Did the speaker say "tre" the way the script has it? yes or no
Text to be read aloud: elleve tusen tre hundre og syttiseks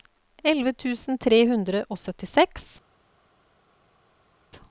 yes